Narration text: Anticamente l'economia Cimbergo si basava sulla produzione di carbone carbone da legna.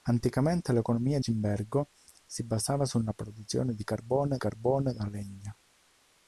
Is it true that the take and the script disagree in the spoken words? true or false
false